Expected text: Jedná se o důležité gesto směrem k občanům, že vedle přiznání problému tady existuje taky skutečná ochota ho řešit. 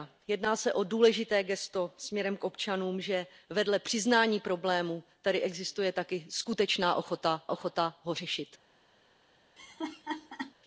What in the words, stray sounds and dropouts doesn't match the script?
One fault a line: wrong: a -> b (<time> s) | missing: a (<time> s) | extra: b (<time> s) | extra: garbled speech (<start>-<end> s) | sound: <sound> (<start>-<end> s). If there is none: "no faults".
extra: ochota (7.5 s)
sound: laugh (9.6-10.5 s)